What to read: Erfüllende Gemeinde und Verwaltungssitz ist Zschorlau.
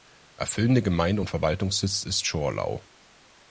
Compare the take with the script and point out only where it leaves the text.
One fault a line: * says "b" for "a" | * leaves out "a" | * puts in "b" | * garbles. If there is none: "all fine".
all fine